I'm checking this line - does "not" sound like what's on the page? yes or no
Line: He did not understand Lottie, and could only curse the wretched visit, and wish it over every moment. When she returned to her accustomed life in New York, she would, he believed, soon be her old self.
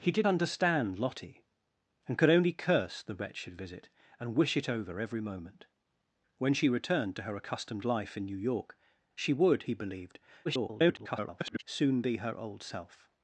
no